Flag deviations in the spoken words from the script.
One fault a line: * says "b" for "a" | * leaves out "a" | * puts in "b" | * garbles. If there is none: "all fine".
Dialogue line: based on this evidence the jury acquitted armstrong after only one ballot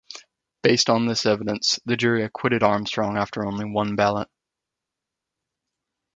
all fine